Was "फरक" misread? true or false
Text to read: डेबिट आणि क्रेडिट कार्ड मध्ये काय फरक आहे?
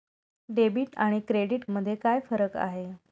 false